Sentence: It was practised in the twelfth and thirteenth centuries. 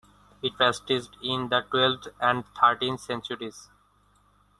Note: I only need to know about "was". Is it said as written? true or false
false